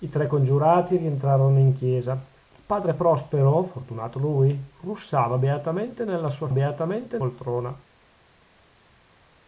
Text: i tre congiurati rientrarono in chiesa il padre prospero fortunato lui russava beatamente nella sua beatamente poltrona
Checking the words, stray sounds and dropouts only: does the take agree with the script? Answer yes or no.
yes